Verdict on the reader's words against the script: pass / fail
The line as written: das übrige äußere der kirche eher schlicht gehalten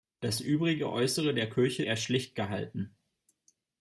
pass